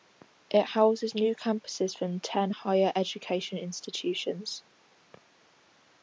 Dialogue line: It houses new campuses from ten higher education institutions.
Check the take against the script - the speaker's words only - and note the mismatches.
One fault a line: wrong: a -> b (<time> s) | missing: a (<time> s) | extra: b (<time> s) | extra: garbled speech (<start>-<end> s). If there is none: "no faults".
no faults